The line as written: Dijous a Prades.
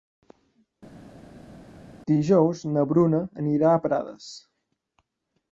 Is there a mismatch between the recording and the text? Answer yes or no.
yes